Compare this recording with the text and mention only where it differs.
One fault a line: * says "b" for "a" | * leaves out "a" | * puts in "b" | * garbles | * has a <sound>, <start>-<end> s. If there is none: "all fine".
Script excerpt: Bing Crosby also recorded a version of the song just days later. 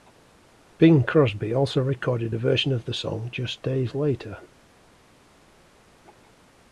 all fine